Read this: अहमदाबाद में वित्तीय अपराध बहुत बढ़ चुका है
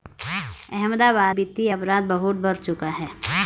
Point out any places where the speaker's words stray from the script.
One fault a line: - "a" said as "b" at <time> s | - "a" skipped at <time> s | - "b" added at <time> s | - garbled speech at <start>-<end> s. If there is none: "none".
- "में" skipped at 1.4 s